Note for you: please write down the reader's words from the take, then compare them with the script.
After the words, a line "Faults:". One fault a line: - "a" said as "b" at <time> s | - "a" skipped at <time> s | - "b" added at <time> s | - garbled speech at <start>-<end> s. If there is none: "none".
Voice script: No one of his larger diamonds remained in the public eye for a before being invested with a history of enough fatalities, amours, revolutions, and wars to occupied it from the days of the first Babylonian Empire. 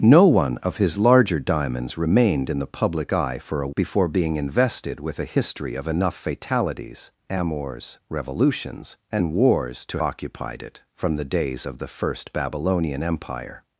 No one of his larger diamonds remained in the public eye for a before being invested with a history of enough fatalities, amours, revolutions, and wars to occupied it from the days of the first Babylonian Empire.
Faults:
none